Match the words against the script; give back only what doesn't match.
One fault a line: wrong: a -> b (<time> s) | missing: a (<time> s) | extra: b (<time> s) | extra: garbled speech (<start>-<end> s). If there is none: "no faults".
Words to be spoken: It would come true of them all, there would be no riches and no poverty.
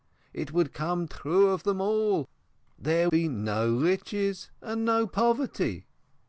missing: would (3.1 s)